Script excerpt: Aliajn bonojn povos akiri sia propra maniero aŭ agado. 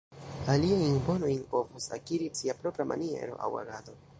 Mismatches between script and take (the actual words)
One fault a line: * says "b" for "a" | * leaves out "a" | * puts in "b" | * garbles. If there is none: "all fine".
all fine